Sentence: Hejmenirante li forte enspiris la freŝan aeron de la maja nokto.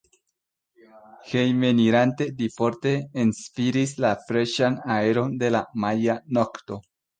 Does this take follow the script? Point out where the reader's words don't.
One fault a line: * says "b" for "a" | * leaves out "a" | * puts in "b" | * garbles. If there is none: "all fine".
all fine